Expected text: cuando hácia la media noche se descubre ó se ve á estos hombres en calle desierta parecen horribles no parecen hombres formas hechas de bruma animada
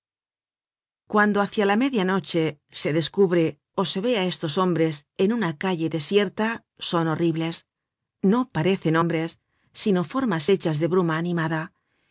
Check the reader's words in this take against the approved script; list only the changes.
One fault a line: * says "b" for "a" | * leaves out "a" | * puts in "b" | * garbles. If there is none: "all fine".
* puts in "una"
* says "son" for "parecen"
* puts in "sino"